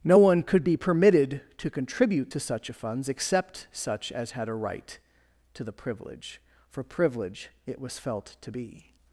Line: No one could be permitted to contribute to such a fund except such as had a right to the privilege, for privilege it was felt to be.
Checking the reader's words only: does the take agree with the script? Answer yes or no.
no